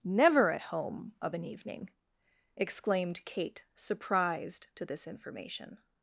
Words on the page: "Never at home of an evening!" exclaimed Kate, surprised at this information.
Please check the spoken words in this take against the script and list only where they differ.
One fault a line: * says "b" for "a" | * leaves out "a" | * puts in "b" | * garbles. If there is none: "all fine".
* says "to" for "at"